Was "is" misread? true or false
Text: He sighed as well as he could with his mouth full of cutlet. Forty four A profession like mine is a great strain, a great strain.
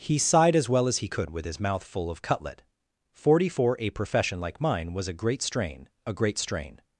true